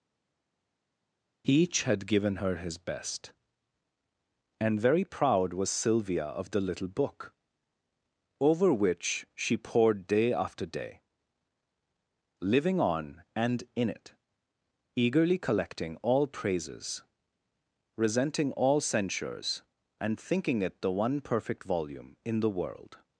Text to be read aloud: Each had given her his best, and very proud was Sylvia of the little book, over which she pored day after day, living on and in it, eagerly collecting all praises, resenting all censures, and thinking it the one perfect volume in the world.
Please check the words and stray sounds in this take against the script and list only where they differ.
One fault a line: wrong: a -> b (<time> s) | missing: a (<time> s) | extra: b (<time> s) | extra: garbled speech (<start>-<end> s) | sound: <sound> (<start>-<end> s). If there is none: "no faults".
no faults